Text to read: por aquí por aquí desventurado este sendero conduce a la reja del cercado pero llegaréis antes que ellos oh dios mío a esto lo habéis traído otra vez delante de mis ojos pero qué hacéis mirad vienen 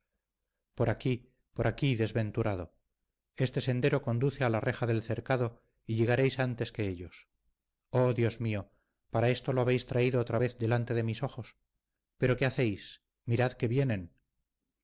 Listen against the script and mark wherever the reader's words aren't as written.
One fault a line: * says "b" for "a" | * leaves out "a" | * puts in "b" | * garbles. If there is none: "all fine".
* says "y" for "pero"
* says "para" for "a"
* puts in "que"